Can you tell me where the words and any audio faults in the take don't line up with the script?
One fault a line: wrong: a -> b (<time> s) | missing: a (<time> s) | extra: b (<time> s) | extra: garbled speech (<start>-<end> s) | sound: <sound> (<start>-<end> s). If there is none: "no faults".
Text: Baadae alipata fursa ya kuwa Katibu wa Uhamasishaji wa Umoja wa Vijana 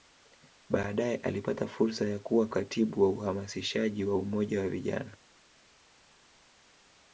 no faults